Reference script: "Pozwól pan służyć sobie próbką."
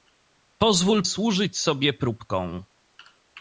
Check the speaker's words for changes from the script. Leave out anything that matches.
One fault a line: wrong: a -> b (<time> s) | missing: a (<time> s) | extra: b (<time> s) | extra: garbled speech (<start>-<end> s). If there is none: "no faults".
missing: pan (1.0 s)